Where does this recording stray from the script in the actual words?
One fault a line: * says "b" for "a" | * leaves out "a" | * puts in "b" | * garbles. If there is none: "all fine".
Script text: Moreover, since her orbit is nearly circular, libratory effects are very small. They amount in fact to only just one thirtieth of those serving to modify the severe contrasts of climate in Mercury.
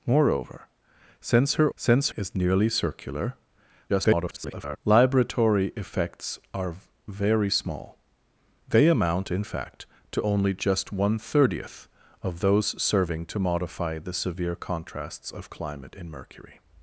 * says "since" for "orbit"
* garbles